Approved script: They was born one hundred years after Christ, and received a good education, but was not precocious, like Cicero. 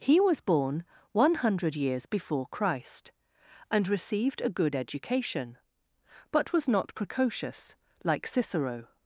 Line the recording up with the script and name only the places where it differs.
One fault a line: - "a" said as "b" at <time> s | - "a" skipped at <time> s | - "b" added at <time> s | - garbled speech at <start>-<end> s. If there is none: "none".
- "They" said as "He" at 0.0 s
- "after" said as "before" at 2.1 s